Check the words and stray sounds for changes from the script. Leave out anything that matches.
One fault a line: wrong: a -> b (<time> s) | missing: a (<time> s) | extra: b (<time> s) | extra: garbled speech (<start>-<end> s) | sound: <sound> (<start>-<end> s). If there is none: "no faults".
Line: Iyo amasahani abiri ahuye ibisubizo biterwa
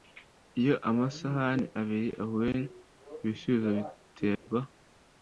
sound: dropout (4.4-4.5 s)